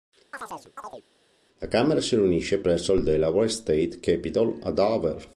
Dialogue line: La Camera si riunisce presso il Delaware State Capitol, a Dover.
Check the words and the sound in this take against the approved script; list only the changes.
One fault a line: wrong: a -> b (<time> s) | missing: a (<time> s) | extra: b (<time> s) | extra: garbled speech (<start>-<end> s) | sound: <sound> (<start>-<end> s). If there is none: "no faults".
sound: chirp (0.3-1.0 s)